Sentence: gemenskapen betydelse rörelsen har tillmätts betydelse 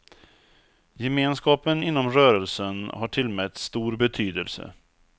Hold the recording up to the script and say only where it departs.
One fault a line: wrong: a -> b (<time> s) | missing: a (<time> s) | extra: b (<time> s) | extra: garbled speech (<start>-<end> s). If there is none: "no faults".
wrong: betydelse -> inom (1.8 s)
extra: stor (3.6 s)